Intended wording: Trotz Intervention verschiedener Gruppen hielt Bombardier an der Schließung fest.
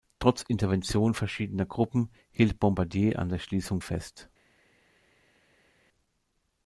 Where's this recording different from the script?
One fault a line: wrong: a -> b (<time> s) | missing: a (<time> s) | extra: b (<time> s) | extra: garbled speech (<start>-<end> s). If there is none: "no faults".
no faults